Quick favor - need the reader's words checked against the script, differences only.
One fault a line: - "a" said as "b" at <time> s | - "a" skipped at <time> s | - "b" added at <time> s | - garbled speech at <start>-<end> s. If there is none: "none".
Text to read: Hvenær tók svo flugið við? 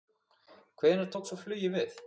none